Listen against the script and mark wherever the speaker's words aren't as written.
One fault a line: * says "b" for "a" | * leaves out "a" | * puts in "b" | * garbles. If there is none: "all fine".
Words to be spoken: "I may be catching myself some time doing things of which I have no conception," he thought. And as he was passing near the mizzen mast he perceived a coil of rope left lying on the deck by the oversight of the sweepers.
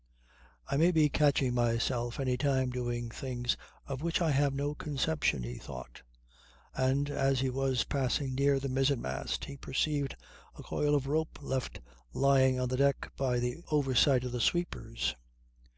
* says "any" for "some"